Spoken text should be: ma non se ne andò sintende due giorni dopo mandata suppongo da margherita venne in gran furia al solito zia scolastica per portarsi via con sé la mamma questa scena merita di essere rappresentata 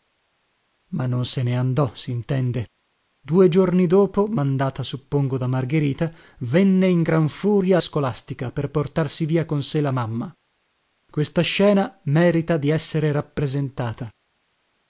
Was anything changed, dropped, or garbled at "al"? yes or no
yes